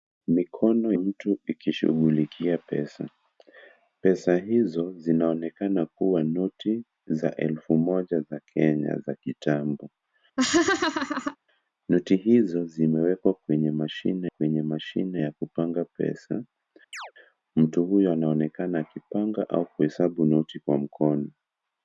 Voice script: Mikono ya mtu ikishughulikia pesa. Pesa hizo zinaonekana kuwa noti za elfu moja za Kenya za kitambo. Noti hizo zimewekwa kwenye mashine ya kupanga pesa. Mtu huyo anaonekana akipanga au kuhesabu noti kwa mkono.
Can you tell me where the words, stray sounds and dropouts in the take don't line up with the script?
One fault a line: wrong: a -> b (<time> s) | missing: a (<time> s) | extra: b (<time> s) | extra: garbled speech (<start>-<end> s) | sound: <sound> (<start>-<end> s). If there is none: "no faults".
missing: ya (0.9 s)
sound: laugh (10.4-11.4 s)
extra: kwenye mashine (14.3 s)
sound: chirp (16.9-17.1 s)